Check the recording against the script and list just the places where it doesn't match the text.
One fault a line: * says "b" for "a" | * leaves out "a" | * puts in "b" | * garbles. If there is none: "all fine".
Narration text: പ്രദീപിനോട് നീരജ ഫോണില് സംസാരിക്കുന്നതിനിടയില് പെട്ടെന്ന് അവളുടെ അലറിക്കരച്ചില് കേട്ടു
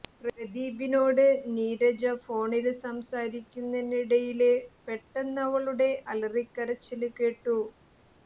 all fine